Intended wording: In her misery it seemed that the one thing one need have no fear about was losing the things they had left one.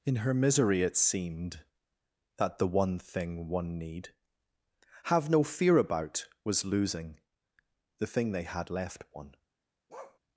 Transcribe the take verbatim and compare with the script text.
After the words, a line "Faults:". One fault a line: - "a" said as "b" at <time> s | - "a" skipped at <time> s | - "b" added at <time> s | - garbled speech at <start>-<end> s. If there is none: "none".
In her misery it seemed that the one thing one need have no fear about was losing the thing they had left one.
Faults:
- "things" said as "thing" at 8.0 s